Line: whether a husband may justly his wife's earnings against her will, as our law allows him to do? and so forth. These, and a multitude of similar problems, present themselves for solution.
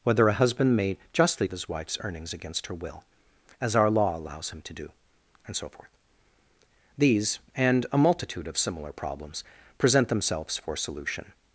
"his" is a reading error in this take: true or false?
false